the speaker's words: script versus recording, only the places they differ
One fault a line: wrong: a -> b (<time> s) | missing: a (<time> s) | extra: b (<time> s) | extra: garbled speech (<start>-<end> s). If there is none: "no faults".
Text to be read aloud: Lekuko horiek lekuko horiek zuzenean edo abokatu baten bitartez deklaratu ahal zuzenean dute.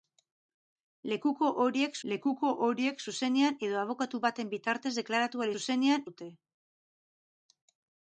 no faults